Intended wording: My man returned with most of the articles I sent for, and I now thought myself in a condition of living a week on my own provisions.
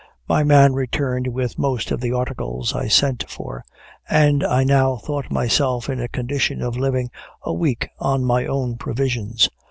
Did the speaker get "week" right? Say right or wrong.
right